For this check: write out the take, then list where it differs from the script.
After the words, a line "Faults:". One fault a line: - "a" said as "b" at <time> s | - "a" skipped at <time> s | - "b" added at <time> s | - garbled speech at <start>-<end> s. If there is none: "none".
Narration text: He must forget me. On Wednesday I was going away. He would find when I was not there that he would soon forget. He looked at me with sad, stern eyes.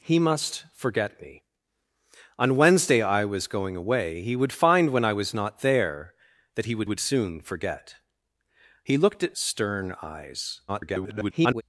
He must forget me. On Wednesday I was going away. He would find when I was not there that he would would soon forget. He looked at stern eyes. [garbled]
Faults:
- "would" added at 6.8 s
- "me with sad" skipped at 9.4 s
- garbled speech at 10.7-11.6 s